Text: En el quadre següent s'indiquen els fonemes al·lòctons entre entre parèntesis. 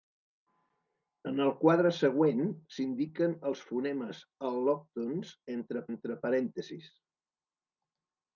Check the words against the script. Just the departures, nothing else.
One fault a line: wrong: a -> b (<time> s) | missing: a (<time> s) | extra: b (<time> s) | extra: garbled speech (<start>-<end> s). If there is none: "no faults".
no faults